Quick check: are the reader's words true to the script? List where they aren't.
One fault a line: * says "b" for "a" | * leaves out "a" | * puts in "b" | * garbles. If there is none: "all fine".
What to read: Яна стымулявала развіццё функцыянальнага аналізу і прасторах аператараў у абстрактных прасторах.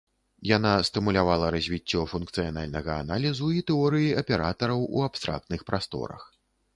* says "тэорыі" for "прасторах"